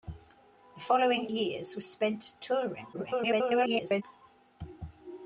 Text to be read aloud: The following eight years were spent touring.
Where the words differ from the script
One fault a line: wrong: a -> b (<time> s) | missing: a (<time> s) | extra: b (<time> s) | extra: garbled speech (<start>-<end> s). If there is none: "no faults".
missing: eight (1.3 s)
extra: garbled speech (2.9-4.0 s)